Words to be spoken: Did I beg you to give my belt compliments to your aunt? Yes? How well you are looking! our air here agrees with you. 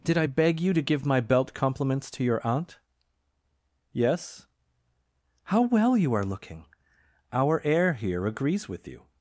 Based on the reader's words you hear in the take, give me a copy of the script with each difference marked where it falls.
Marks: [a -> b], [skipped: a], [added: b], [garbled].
Did I beg you to give my belt compliments to your aunt? Yes? How well you are looking! our air here agrees with you.